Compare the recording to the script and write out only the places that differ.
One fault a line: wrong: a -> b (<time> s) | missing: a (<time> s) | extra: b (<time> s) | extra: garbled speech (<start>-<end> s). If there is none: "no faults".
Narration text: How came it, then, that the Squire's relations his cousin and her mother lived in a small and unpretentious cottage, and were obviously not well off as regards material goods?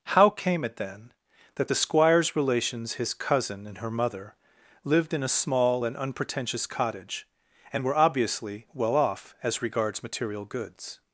missing: not (8.7 s)